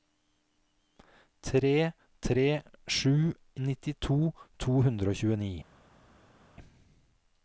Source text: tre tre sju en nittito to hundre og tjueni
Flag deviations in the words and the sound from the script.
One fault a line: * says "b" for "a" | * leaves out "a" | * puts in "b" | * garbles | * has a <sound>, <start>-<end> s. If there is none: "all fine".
* leaves out "en"